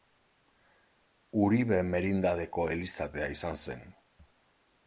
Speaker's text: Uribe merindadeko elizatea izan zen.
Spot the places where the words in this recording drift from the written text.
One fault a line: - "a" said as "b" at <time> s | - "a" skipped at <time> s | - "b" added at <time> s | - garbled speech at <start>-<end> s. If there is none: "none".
none